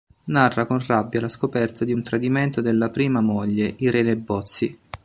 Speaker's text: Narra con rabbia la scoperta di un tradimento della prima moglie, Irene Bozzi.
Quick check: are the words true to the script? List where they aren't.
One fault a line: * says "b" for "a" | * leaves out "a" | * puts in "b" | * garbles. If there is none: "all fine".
all fine